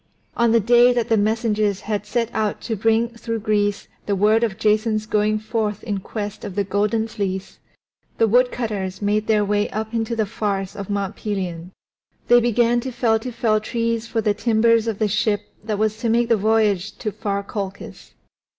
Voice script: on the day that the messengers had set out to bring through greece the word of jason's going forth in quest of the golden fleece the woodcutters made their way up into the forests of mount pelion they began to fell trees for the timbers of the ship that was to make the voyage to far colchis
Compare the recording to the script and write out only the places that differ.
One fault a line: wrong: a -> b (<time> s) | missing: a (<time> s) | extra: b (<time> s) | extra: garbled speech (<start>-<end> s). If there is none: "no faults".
extra: to fell (13.2 s)